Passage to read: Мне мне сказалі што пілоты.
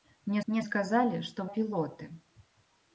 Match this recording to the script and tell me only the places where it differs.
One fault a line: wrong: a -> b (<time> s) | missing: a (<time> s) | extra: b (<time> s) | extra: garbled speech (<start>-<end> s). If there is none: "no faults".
no faults